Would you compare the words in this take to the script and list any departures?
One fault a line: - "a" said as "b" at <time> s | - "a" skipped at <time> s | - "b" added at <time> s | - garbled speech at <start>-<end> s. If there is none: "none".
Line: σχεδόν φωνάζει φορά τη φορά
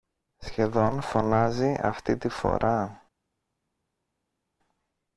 - "φορά" said as "αυτή" at 1.8 s